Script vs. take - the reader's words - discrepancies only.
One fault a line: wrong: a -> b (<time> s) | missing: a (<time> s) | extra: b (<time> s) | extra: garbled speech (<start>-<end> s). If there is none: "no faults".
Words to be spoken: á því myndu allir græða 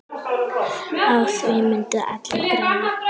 no faults